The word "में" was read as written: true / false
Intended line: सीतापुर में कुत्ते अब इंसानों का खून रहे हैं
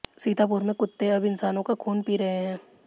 true